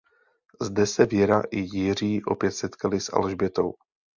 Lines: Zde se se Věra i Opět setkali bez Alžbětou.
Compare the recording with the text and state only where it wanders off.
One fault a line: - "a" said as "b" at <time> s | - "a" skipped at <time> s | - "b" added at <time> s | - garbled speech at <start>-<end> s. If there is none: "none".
- "se" skipped at 1.1 s
- "Jiří" added at 1.6 s
- "bez" said as "s" at 3.0 s